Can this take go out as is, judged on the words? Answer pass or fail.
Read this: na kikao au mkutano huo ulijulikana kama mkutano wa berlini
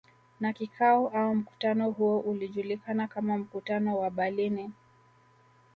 pass